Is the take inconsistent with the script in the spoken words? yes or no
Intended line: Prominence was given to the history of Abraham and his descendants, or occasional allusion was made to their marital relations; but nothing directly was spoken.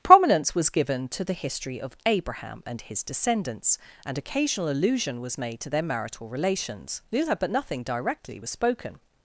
yes